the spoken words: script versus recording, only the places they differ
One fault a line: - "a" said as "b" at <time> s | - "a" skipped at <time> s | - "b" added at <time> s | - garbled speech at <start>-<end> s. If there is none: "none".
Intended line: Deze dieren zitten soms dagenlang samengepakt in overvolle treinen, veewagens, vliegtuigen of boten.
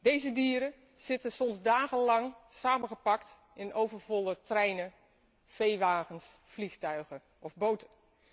none